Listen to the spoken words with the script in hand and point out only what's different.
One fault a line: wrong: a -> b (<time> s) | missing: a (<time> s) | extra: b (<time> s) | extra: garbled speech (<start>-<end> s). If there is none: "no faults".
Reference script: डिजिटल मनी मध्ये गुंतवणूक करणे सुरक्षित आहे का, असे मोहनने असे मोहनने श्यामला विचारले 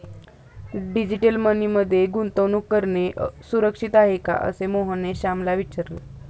missing: असे मोहनने (5.1 s)